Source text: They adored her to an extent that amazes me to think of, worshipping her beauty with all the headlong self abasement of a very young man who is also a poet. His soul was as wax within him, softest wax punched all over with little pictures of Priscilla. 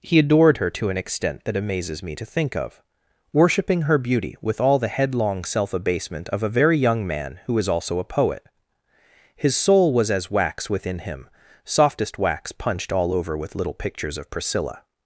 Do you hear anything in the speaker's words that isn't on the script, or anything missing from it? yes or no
yes